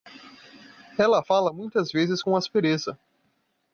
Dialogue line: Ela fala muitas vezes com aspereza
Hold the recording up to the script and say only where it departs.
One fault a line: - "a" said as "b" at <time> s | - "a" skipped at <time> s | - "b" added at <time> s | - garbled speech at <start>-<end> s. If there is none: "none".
none